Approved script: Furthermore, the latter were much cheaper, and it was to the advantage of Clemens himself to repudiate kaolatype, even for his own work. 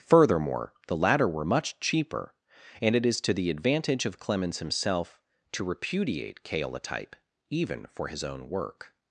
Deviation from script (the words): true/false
true